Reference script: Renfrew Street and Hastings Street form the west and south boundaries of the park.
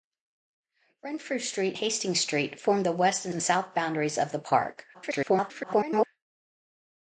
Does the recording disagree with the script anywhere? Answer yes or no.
yes